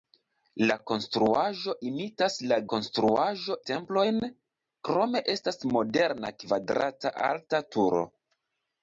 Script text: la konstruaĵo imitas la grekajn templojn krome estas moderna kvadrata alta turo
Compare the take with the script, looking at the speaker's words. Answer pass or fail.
fail